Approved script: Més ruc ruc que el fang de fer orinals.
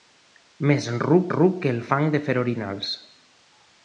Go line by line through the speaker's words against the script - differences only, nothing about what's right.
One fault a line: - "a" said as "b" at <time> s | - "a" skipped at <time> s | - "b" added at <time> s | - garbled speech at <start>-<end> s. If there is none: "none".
none